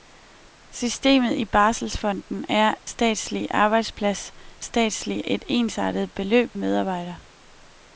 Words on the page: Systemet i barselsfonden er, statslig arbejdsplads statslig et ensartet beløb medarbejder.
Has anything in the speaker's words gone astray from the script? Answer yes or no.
no